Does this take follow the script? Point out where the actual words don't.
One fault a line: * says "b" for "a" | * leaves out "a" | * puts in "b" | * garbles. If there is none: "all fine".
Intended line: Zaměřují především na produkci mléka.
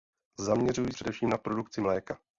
all fine